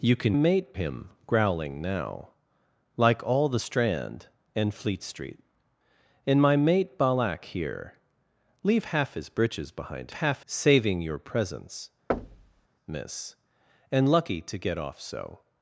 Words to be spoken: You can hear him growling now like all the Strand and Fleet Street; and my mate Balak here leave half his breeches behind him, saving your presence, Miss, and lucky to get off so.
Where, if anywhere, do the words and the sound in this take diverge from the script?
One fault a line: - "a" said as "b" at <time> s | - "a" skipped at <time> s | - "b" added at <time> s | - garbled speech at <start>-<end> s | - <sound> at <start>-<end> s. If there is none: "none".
- "hear" said as "mate" at 0.3 s
- "him" said as "half" at 10.1 s
- thud at 12.1-12.7 s